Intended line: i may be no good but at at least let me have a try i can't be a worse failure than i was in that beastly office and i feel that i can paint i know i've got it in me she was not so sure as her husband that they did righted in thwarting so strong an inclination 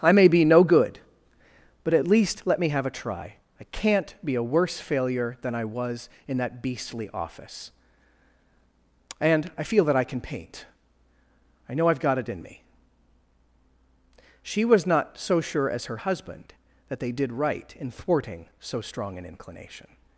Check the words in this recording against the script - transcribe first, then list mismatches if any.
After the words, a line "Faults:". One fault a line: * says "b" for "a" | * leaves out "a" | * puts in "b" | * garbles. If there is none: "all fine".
i may be no good but at least let me have a try i can't be a worse failure than i was in that beastly office and i feel that i can paint i know i've got it in me she was not so sure as her husband that they did right in thwarting so strong an inclination
Faults:
* leaves out "at"
* says "right" for "righted"